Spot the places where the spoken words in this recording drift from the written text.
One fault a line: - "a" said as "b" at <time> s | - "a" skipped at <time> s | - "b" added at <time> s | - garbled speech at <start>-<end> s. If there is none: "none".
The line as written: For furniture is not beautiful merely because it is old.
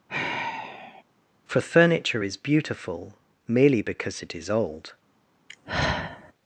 - "not" skipped at 2.4 s